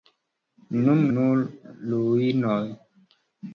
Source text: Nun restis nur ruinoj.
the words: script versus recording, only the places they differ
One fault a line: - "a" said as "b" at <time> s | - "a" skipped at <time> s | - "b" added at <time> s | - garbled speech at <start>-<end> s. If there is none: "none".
- "restis" skipped at 1.0 s